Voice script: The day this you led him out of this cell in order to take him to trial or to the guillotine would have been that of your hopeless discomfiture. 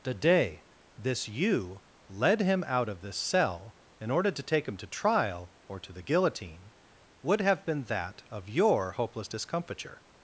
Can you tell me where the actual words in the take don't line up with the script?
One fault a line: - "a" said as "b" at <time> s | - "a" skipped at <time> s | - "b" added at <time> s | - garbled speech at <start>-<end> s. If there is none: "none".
none